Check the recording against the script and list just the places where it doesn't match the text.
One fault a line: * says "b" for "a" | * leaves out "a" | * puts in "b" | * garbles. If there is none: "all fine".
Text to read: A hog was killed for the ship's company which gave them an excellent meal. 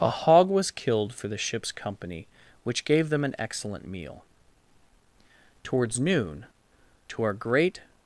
* puts in "Towards noon to our great"